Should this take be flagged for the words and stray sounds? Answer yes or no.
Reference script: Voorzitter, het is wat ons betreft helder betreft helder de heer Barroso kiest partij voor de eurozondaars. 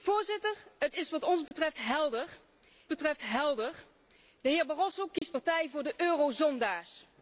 yes